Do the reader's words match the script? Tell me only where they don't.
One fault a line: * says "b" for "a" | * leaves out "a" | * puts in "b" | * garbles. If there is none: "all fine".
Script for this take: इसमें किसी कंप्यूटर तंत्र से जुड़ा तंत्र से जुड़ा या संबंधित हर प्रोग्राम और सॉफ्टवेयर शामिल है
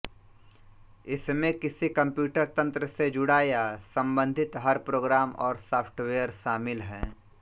* leaves out "तंत्र से जुड़ा"